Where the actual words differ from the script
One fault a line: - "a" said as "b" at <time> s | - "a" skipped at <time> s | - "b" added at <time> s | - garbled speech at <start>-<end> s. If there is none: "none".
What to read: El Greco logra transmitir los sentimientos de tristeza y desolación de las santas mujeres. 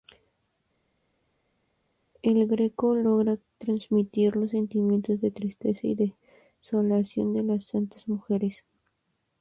none